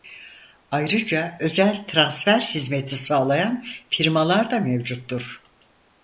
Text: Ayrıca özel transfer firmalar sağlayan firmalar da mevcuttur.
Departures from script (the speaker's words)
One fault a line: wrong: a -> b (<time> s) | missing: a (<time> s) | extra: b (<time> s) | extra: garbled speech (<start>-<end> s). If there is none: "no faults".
wrong: firmalar -> hizmeti (2.4 s)